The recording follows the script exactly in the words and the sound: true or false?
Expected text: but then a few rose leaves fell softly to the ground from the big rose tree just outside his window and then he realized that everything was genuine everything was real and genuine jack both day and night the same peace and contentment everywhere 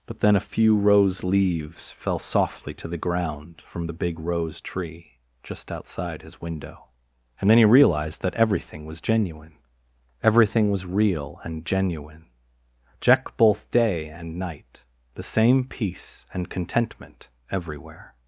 true